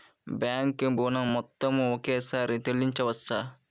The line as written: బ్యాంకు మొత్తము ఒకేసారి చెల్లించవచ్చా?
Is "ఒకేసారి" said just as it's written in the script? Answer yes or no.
yes